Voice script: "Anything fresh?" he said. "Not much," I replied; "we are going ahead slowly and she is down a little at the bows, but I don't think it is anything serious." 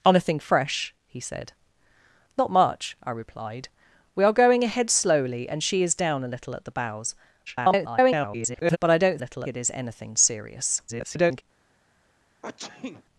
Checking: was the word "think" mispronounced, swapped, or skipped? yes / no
yes